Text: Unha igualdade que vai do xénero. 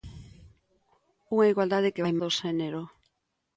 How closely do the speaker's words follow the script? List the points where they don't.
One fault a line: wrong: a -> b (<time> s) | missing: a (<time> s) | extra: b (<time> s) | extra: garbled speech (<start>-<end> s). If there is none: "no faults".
no faults